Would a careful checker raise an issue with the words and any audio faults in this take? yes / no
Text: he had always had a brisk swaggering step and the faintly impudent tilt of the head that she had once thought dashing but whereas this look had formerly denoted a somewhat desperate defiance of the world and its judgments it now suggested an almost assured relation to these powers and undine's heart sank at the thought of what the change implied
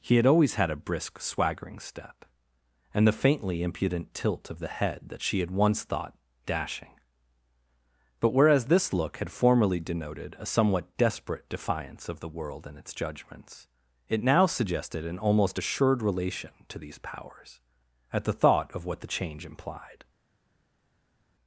yes